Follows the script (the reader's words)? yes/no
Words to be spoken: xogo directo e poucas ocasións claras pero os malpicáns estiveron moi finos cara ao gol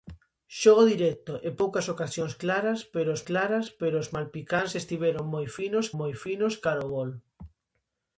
no